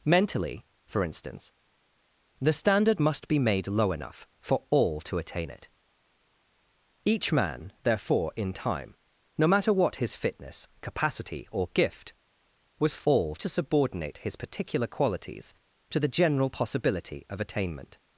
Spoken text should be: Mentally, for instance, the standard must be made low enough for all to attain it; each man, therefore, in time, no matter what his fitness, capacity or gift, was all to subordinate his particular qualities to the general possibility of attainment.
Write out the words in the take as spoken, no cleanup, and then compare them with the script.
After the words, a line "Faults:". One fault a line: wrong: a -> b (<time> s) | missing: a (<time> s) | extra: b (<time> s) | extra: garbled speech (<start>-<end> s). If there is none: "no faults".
Mentally, for instance, the standard must be made low enough for all to attain it; each man, therefore, in time, no matter what his fitness, capacity or gift, was all to subordinate his particular qualities to the general possibility of attainment.
Faults:
no faults